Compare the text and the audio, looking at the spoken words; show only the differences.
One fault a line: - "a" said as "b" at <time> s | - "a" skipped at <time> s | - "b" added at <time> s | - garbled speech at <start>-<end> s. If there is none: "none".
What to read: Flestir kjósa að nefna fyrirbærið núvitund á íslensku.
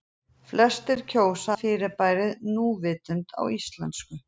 - "að nefna" skipped at 1.6 s